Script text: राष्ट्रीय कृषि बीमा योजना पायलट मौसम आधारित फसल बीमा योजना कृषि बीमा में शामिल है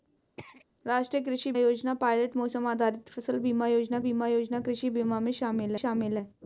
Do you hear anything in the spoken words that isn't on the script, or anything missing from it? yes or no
yes